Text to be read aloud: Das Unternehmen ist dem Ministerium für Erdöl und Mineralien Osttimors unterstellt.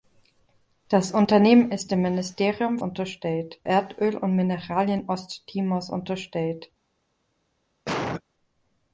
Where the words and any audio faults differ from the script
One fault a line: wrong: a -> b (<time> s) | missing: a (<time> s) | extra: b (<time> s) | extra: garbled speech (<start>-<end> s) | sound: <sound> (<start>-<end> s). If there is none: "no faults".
wrong: für -> unterstellt (2.8 s)
sound: cough (7.9-8.2 s)